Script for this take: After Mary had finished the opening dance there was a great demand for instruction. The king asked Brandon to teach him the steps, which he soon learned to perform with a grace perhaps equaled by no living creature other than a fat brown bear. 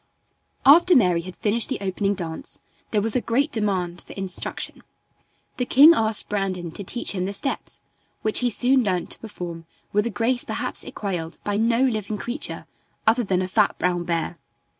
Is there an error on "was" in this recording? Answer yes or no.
no